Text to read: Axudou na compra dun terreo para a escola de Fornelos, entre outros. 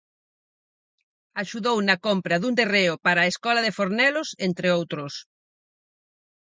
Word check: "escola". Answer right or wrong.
right